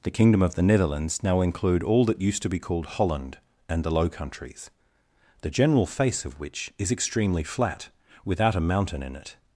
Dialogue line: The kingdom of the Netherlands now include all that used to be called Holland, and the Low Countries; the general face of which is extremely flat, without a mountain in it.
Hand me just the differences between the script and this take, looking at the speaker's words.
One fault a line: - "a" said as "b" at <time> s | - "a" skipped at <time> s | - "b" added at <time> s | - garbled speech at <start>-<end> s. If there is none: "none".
none